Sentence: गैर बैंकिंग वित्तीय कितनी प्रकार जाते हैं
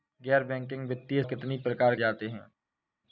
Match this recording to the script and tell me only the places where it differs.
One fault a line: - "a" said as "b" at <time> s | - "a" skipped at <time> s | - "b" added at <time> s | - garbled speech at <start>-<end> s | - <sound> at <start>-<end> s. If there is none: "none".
none